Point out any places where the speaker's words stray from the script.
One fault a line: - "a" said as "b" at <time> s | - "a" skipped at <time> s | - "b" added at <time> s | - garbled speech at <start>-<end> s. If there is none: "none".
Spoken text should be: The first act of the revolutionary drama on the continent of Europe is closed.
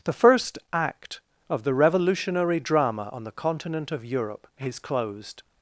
none